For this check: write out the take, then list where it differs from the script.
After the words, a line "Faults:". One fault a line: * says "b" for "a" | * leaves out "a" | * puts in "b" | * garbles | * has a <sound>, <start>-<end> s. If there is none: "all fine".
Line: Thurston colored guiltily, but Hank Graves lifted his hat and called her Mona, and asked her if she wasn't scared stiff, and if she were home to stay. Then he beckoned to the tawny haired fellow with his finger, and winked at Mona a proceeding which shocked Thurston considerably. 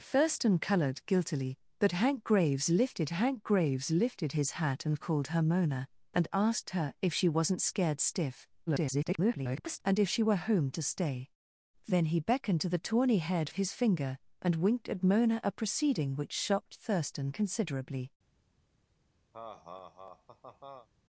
Thurston colored guiltily, but Hank Graves lifted Hank Graves lifted his hat and called her Mona, and asked her if she wasn't scared stiff, [garbled] and if she were home to stay. Then he beckoned to the tawny haired his finger, and winked at Mona a proceeding which shocked Thurston considerably.
Faults:
* puts in "Hank Graves lifted"
* garbles
* leaves out "fellow with"
* has a laugh, 19.3-20.9 s